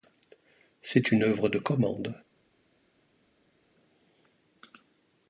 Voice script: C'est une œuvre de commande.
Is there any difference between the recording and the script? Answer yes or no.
no